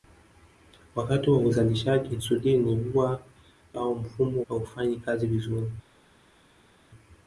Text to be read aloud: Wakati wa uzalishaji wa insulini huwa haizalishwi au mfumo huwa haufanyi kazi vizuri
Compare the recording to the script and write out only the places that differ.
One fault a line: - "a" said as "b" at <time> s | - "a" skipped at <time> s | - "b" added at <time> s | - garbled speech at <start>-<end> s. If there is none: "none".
- "wa" skipped at 2.1 s
- "haizalishwi" skipped at 3.2 s
- "huwa" skipped at 4.4 s